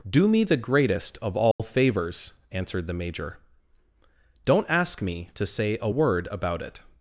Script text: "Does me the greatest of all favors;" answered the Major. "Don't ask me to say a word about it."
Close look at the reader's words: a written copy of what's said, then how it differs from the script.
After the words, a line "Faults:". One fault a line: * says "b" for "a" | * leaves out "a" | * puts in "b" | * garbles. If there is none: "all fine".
"Do me the greatest of all favors;" answered the Major. "Don't ask me to say a word about it."
Faults:
* says "Do" for "Does"